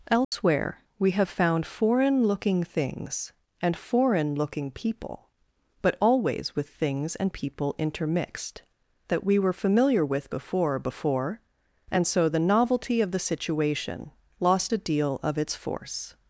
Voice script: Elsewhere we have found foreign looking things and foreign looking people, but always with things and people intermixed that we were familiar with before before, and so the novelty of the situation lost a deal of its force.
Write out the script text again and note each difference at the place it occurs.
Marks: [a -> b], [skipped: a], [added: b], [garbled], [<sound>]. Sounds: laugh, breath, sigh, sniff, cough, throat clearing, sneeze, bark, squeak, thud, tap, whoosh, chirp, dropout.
Elsewhere [dropout] we have found foreign looking things and foreign looking people, but always with things and people intermixed that we were familiar with before before, and so the novelty of the situation lost a deal of its force.